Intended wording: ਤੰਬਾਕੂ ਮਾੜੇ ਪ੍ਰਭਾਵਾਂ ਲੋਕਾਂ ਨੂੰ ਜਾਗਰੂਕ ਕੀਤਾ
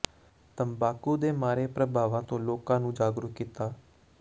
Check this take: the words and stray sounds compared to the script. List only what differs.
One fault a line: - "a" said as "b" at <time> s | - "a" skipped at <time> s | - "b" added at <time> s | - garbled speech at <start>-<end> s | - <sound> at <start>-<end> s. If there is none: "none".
- "ਦੇ" added at 1.2 s
- "ਤੋਂ" added at 2.2 s